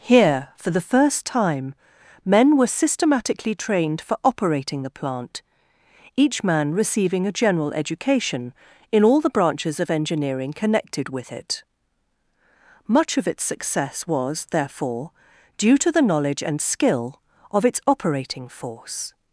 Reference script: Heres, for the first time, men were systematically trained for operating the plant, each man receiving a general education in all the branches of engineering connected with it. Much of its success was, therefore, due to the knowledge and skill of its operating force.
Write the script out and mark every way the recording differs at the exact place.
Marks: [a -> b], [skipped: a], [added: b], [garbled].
[Heres, -> Here] for the first time, men were systematically trained for operating the plant, each man receiving a general education in all the branches of engineering connected with it. Much of its success was, therefore, due to the knowledge and skill of its operating force.